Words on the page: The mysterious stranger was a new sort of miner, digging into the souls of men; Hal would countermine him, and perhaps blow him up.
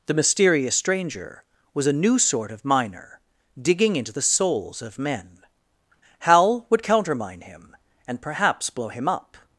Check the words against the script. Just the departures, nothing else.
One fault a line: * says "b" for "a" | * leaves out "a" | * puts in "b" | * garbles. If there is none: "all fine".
all fine